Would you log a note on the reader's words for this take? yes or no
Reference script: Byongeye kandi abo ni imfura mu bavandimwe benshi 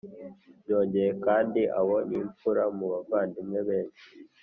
no